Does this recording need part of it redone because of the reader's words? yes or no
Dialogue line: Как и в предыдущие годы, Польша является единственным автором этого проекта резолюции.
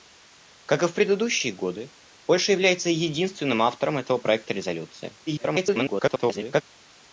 yes